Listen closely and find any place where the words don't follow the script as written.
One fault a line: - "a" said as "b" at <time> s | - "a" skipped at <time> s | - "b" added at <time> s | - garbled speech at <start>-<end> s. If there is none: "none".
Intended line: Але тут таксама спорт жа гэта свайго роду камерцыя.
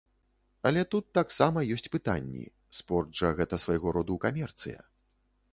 - "ёсць пытанні" added at 1.8 s